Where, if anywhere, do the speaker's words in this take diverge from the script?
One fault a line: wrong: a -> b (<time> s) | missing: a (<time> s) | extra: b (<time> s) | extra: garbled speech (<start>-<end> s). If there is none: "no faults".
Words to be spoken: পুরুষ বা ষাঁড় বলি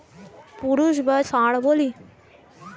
no faults